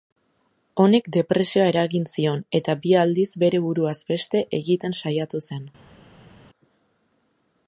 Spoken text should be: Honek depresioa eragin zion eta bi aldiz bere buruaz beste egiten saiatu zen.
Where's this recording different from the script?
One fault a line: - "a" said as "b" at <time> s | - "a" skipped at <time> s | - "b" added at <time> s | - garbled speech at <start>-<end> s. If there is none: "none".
none